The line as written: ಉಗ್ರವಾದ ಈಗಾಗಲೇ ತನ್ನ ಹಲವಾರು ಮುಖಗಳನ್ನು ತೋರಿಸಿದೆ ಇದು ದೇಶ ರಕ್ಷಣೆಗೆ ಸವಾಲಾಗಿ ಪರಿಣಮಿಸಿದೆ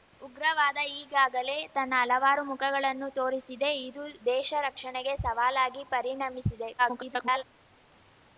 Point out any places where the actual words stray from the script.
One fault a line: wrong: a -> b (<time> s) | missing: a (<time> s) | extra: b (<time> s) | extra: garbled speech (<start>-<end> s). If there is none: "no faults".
extra: garbled speech (6.8-7.4 s)